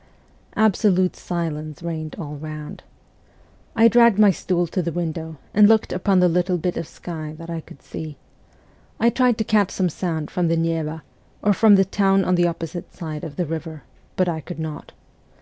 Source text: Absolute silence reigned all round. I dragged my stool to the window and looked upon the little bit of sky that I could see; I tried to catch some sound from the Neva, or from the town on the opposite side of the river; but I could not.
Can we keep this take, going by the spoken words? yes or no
yes